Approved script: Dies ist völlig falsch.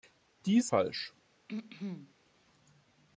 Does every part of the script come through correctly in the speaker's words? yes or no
no